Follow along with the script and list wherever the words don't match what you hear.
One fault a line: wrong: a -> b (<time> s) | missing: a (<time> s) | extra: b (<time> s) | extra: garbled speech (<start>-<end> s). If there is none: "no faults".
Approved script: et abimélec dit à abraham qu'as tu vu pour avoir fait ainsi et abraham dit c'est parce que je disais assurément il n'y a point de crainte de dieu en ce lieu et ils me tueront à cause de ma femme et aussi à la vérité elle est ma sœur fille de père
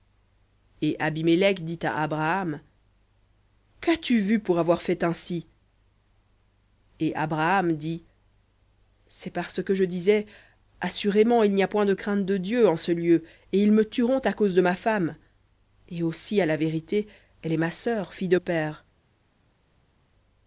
no faults